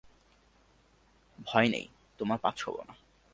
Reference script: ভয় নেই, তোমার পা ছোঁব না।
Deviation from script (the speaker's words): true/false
false